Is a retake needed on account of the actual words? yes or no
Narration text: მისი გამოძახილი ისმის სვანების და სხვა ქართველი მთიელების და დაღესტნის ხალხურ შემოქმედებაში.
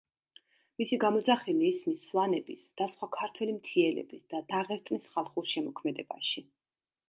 no